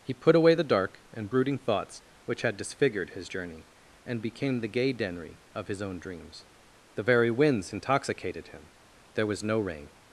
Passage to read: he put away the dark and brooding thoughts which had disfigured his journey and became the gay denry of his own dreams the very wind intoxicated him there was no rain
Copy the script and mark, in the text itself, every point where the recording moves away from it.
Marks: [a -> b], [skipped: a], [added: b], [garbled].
he put away the dark and brooding thoughts which had disfigured his journey and became the gay denry of his own dreams the very [wind -> winds] intoxicated him there was no rain